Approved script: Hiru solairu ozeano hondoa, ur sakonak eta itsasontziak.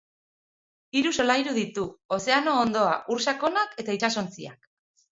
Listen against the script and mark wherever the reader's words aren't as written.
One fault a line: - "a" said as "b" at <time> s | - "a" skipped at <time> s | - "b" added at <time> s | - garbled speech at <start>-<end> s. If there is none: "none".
- "ditu" added at 1.6 s